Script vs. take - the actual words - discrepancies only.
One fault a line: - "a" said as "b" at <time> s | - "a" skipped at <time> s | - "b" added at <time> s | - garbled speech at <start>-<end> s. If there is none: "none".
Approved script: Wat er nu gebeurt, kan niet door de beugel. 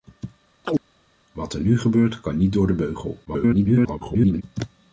- garbled speech at 3.3-4.4 s